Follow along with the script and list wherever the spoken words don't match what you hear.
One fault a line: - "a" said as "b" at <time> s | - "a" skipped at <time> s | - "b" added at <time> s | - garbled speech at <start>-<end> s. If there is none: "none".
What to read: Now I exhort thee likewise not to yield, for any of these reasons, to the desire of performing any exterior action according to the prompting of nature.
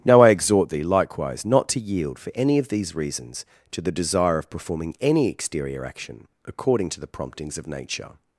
- "prompting" said as "promptings" at 7.1 s